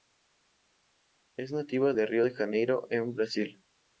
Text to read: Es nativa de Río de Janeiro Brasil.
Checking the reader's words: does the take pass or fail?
fail